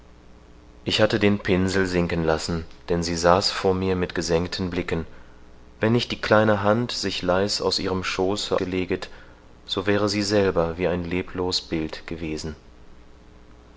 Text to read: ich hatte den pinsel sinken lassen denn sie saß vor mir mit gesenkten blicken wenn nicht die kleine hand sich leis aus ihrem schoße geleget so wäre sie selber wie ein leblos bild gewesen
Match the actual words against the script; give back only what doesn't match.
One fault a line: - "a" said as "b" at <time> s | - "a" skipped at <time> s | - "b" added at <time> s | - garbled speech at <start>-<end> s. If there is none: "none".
none